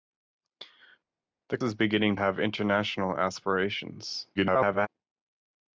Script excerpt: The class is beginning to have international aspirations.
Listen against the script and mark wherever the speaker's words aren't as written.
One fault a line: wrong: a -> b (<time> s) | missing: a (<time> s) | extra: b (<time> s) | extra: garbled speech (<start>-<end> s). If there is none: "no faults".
missing: class (1.6 s)
missing: to (2.2 s)
extra: garbled speech (4.3-4.9 s)